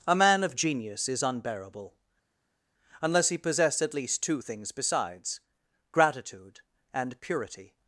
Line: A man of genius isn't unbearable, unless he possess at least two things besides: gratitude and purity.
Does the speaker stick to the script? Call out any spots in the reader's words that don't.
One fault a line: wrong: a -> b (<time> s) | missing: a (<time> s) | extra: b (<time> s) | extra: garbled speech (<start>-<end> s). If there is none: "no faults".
wrong: isn't -> is (1.1 s)